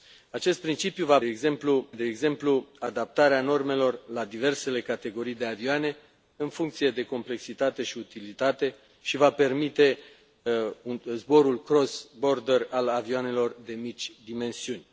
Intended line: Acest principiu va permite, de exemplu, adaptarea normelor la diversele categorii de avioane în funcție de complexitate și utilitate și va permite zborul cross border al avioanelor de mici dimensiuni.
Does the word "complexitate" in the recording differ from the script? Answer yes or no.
no